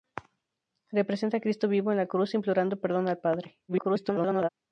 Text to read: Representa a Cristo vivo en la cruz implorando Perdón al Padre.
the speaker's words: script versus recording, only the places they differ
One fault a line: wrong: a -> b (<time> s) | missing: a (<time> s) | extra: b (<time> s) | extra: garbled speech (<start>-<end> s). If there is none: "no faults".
extra: garbled speech (3.7-4.5 s)